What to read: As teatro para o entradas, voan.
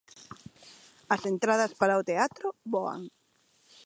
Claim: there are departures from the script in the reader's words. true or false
true